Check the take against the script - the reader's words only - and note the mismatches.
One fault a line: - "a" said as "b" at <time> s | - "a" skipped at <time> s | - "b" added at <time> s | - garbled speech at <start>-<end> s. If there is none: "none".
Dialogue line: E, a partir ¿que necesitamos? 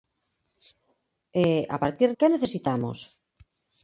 none